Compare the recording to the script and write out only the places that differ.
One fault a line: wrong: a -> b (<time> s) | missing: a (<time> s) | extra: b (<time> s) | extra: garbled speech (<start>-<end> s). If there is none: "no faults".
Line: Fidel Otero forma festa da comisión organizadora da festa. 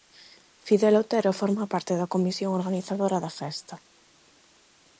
wrong: festa -> parte (1.7 s)